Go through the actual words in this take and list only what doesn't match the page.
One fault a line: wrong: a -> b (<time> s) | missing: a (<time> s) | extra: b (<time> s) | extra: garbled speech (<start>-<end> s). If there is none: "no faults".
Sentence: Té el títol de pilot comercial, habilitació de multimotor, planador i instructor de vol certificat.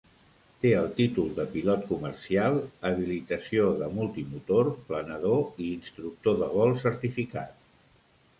no faults